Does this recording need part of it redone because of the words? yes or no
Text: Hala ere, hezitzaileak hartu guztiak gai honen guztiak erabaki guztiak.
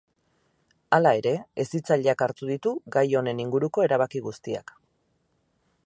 yes